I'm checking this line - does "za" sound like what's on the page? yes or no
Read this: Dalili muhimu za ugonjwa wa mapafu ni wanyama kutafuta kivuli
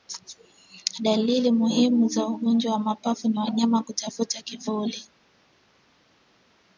yes